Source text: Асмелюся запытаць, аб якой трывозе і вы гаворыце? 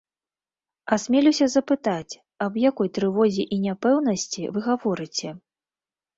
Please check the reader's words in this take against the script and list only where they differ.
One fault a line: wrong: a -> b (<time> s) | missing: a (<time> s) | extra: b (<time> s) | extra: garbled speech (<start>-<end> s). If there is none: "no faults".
extra: няпэўнасці (3.7 s)